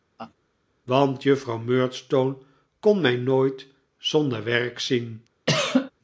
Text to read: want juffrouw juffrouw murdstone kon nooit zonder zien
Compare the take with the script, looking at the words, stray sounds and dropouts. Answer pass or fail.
fail